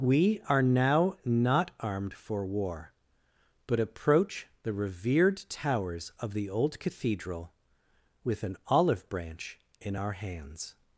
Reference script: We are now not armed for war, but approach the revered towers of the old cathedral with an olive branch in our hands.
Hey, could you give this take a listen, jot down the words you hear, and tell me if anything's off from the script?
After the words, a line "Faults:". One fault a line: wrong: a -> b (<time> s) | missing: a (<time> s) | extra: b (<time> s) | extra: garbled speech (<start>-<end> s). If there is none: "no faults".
We are now not armed for war, but approach the revered towers of the old cathedral with an olive branch in our hands.
Faults:
no faults